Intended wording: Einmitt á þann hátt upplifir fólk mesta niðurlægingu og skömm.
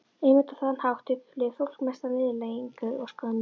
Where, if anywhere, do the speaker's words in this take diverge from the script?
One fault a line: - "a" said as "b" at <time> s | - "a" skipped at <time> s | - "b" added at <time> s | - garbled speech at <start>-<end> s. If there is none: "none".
none